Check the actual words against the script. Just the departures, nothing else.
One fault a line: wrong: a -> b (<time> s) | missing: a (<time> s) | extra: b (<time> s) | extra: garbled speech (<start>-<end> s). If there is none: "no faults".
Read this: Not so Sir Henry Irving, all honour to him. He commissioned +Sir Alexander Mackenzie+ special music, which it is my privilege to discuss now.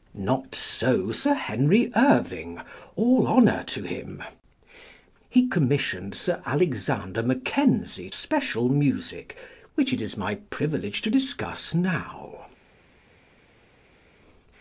no faults